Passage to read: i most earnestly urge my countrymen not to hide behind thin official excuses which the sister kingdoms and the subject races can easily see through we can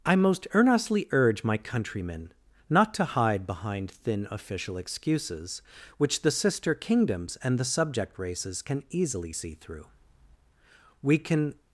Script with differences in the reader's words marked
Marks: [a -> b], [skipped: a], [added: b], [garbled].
i most earnestly urge my countrymen not to hide behind thin official excuses which the sister kingdoms and the subject races can easily see through we can